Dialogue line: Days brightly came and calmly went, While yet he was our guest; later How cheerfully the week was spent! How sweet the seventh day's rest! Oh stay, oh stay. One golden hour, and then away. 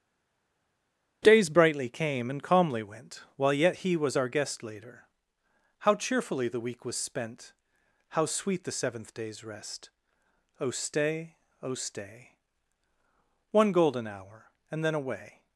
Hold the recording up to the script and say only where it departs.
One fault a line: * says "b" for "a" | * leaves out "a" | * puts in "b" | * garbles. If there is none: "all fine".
all fine